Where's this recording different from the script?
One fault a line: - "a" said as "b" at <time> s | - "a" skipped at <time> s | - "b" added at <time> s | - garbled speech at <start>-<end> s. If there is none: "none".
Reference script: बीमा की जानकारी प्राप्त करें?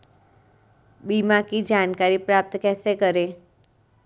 - "कैसे" added at 2.6 s